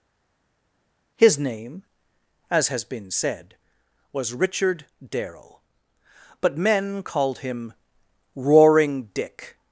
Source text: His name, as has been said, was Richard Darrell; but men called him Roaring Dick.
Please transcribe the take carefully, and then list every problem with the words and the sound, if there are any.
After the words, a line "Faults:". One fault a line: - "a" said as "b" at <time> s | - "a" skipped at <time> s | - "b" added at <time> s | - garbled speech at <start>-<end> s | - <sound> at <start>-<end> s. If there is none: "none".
His name, as has been said, was Richard Darrell; but men called him Roaring Dick.
Faults:
none